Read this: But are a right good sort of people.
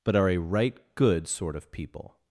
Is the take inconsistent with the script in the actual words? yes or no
no